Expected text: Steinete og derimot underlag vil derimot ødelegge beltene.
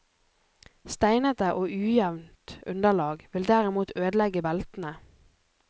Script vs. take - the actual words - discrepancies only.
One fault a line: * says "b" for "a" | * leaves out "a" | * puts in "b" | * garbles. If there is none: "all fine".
* says "ujevnt" for "derimot"